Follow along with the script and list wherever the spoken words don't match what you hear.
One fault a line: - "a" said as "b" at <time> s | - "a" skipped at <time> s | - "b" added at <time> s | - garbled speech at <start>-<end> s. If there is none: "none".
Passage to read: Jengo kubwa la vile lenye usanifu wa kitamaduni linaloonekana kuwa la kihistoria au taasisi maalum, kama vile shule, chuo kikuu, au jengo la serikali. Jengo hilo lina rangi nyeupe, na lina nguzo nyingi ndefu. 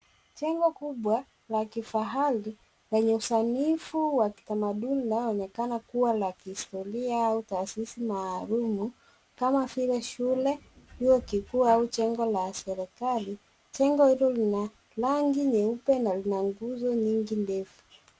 - "vile" said as "kifahari" at 1.7 s